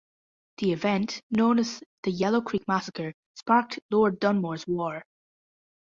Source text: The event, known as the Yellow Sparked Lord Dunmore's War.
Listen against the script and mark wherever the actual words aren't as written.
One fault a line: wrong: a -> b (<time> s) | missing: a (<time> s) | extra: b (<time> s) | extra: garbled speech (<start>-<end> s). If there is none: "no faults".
extra: Creek massacre (2.4 s)